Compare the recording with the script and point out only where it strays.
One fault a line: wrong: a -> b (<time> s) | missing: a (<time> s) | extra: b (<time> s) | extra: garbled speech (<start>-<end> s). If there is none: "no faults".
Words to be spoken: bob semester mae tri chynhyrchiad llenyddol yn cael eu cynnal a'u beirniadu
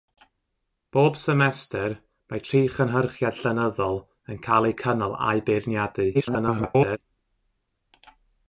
extra: garbled speech (6.1-7.0 s)